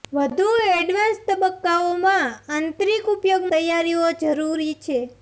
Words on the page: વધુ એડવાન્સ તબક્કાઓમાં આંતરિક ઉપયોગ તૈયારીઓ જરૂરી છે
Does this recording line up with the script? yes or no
yes